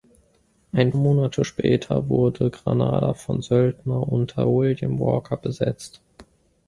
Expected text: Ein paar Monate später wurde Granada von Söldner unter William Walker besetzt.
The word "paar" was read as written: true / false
false